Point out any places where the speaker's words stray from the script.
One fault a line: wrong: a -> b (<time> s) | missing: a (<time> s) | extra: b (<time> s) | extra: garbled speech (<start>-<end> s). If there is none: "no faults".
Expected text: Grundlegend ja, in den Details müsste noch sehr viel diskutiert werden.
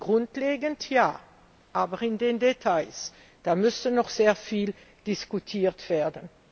extra: aber (1.7 s)